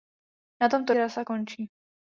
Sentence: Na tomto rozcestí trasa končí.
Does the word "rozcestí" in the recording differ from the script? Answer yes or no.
yes